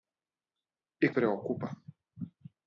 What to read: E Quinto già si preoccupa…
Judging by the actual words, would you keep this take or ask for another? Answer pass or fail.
fail